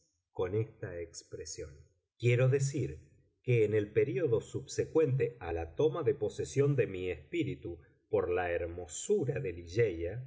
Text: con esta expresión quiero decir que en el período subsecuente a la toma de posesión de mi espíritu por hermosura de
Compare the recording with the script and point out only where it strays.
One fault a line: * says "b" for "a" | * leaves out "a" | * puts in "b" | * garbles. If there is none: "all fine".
* puts in "la"